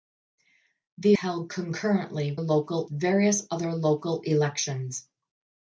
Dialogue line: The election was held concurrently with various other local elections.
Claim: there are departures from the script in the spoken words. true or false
true